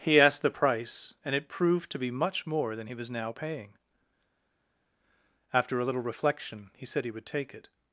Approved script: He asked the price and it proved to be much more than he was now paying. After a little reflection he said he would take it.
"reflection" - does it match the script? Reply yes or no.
yes